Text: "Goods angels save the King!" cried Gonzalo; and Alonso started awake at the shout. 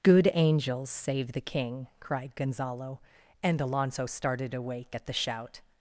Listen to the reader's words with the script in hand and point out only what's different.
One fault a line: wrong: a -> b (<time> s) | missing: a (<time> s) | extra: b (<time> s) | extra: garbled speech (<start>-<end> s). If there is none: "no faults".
wrong: Goods -> Good (0.0 s)